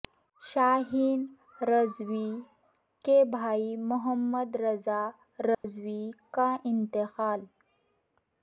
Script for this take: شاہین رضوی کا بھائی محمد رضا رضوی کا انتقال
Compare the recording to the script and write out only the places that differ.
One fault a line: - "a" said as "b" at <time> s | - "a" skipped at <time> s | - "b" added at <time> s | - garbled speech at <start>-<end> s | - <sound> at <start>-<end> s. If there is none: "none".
- "کا" said as "کے" at 3.0 s
- dropout at 5.5-5.6 s